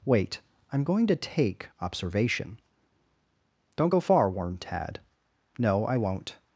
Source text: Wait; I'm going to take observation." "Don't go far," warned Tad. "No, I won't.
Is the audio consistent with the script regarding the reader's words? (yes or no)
yes